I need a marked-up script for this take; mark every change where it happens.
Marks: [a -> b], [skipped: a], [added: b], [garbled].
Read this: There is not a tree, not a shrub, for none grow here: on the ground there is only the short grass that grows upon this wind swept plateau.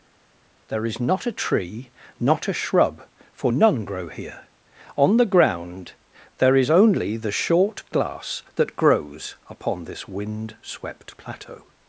There is not a tree, not a shrub, for none grow here: on the ground there is only the short [grass -> glass] that grows upon this wind swept plateau.